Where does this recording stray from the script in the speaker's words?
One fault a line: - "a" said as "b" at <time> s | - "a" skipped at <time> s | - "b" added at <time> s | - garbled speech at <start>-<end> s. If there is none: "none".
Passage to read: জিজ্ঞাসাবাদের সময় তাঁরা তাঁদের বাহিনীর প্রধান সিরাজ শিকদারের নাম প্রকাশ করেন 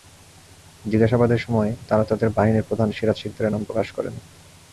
none